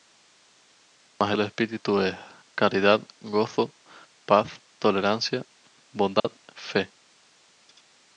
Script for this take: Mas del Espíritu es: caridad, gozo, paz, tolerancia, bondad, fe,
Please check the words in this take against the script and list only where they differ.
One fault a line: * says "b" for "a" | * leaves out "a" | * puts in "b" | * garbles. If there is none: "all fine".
all fine